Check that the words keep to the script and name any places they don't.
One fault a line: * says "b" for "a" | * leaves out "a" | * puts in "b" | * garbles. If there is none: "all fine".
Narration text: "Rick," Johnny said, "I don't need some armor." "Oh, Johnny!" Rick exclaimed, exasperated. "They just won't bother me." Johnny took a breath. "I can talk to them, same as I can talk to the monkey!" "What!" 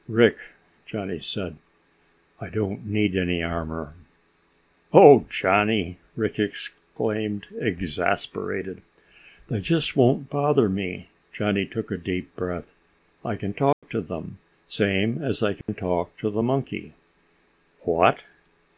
* says "any" for "some"
* puts in "deep"